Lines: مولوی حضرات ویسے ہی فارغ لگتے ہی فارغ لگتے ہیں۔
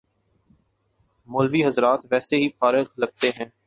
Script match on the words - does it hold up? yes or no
no